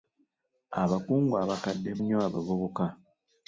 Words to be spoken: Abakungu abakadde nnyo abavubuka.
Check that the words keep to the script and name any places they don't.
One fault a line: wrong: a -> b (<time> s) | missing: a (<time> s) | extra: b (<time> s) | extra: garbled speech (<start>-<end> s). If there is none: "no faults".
no faults